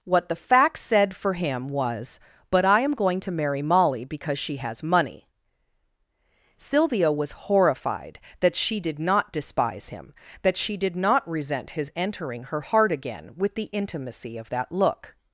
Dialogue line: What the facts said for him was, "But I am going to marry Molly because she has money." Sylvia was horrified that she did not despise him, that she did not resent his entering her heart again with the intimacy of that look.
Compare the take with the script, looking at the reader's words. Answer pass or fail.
pass